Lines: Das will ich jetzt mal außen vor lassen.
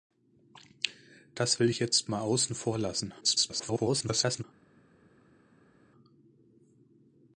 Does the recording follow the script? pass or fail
fail